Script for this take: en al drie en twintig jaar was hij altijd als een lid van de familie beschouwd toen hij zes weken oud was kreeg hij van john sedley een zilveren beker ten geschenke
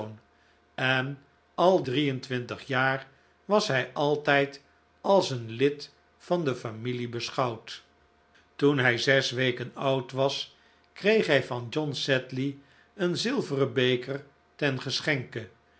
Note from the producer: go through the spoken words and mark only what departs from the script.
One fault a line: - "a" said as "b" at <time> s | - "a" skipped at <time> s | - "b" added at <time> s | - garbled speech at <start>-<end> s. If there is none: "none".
none